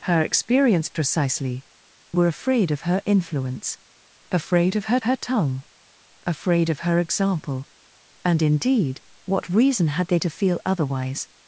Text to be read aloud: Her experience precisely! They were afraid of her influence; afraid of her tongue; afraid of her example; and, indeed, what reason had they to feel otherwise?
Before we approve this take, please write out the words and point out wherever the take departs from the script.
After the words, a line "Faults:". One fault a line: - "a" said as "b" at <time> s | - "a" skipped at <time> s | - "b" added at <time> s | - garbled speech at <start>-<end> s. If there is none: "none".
Her experience precisely! Were afraid of her influence; afraid of her her tongue; afraid of her example; and, indeed, what reason had they to feel otherwise?
Faults:
- "They" skipped at 1.6 s
- "her" added at 5.0 s